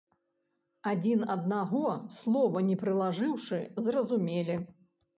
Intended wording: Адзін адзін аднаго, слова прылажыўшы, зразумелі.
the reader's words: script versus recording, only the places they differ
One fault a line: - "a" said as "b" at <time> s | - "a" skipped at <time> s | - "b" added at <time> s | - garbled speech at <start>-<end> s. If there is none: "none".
- "адзін" skipped at 1.2 s
- "не" added at 2.7 s